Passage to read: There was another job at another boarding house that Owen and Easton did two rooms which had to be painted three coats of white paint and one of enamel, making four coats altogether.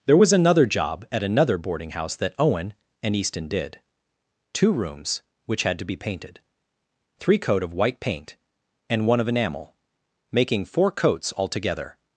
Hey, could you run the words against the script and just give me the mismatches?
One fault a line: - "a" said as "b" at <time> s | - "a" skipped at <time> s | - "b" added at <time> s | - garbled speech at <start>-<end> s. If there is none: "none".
- "coats" said as "coat" at 7.4 s